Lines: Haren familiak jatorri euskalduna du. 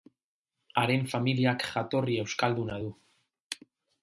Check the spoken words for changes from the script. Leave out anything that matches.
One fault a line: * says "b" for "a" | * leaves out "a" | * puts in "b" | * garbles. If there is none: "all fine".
all fine